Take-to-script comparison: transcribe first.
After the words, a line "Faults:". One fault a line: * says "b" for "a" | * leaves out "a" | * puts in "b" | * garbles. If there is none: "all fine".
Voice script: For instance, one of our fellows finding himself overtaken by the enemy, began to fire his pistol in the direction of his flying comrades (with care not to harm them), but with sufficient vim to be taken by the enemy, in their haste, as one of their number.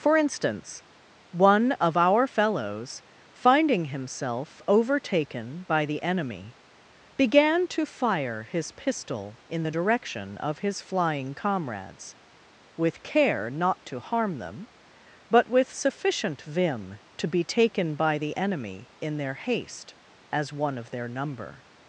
For instance, one of our fellows finding himself overtaken by the enemy, began to fire his pistol in the direction of his flying comrades (with care not to harm them), but with sufficient vim to be taken by the enemy, in their haste, as one of their number.
Faults:
all fine